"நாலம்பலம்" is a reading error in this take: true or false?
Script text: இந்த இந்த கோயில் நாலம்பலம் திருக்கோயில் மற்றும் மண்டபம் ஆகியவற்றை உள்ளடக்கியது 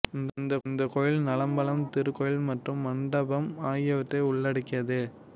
false